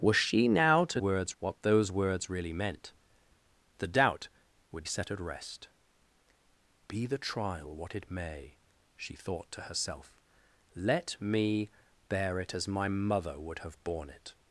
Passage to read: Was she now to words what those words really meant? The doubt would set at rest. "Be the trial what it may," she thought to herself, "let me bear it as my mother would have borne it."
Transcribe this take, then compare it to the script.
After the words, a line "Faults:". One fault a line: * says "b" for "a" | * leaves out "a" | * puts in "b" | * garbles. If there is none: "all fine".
Was she now to words what those words really meant? The doubt would set at rest. "Be the trial what it may," she thought to herself, "let me bear it as my mother would have borne it."
Faults:
all fine